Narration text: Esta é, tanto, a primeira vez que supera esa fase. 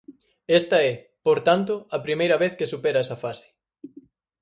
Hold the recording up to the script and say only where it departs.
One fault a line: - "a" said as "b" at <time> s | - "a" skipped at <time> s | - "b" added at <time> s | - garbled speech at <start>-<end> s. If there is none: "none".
- "por" added at 1.2 s